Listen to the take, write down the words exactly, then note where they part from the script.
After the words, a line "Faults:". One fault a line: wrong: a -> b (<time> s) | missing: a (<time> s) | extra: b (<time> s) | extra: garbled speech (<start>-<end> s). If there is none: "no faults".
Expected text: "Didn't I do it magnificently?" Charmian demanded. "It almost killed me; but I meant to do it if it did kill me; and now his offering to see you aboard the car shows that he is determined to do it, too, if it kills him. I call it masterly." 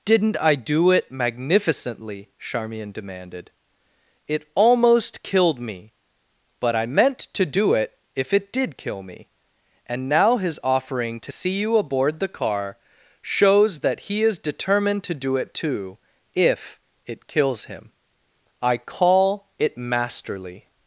"Didn't I do it magnificently?" Charmian demanded. "It almost killed me; but I meant to do it if it did kill me; and now his offering to see you aboard the car shows that he is determined to do it, too, if it kills him. I call it masterly."
Faults:
no faults